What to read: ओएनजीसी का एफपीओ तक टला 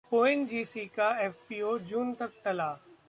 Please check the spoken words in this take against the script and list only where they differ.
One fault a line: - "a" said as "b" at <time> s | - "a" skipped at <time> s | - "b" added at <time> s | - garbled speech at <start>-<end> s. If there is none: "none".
- "जून" added at 1.9 s